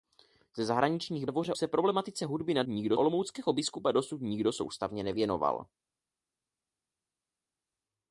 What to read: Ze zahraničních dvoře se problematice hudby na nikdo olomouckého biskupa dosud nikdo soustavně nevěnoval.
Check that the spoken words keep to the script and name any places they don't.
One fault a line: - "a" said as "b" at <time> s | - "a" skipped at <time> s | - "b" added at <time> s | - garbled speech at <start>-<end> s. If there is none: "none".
none